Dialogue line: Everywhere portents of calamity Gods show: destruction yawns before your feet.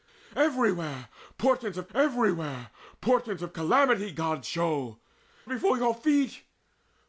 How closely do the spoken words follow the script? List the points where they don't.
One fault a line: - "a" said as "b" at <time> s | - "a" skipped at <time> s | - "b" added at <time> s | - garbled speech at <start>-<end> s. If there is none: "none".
- "everywhere portents of" added at 1.9 s
- "destruction yawns" skipped at 5.0 s